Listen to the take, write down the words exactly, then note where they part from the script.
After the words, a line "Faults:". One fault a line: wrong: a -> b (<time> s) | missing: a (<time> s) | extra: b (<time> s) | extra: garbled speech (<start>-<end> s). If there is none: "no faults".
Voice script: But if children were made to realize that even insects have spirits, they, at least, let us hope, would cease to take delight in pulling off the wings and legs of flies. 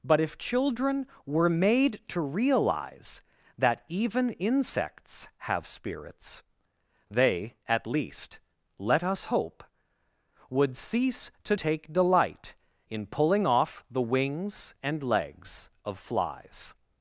But if children were made to realize that even insects have spirits, they, at least, let us hope, would cease to take delight in pulling off the wings and legs of flies.
Faults:
no faults